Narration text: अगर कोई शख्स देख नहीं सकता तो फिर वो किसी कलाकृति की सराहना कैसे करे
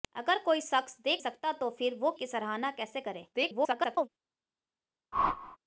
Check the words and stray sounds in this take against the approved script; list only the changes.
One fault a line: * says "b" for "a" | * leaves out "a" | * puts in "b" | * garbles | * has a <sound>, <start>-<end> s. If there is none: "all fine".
* leaves out "नहीं"
* leaves out "किसी कलाकृति"
* garbles
* has a whoosh, 5.1-5.6 s